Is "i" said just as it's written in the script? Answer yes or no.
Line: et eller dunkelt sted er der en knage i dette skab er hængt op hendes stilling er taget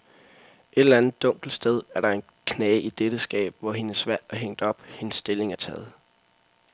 yes